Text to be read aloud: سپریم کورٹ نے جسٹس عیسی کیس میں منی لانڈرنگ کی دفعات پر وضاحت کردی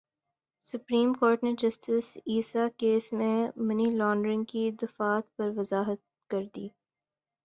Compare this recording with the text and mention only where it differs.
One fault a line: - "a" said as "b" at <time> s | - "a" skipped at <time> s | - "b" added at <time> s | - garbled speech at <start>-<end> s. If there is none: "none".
none